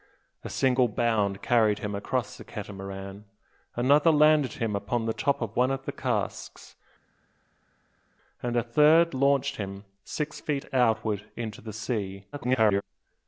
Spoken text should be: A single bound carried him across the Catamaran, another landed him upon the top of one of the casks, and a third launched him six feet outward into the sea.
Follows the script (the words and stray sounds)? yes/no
no